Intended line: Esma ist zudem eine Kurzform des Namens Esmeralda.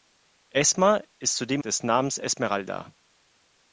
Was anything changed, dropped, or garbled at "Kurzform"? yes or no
yes